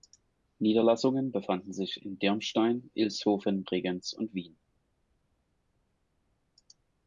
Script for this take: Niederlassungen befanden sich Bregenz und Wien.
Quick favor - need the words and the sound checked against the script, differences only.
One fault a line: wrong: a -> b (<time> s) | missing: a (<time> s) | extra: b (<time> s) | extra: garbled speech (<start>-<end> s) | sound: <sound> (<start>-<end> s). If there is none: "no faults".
extra: in Dirmstein Ilshofen (2.0 s)